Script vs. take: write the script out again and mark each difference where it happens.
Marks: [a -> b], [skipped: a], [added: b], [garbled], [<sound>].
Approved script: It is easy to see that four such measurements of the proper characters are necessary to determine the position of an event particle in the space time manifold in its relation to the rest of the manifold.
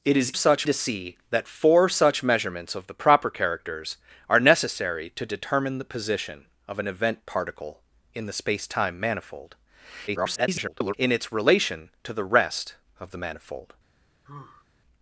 It is [easy -> such] to see that four such measurements of the proper characters are necessary to determine the position of an event particle in the space time manifold [garbled] in its relation to the rest of the manifold. [sigh]